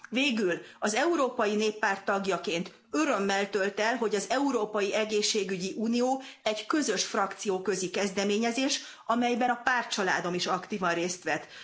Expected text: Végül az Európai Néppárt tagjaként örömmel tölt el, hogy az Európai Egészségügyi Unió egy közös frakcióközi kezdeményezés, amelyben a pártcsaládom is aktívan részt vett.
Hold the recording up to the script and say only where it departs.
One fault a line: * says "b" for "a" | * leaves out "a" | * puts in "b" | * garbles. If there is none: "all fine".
all fine